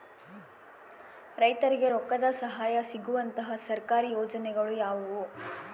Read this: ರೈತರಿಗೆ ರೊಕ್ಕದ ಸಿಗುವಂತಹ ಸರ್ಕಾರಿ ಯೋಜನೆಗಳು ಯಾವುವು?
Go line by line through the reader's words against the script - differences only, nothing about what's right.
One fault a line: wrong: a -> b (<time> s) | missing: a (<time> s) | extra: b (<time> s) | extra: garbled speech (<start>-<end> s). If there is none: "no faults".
extra: ಸಹಾಯ (2.4 s)